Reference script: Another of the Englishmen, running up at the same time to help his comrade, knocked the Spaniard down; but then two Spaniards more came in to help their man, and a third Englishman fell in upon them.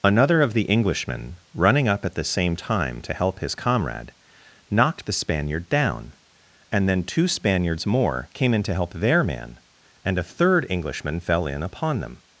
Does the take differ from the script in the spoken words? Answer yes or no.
yes